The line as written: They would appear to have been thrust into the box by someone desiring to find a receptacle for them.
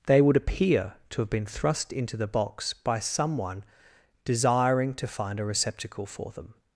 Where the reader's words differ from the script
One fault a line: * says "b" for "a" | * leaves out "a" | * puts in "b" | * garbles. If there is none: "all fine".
all fine